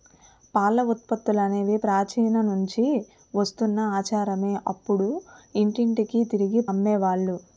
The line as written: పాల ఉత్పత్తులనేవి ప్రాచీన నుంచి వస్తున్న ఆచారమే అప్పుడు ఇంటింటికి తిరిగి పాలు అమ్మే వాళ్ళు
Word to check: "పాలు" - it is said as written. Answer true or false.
false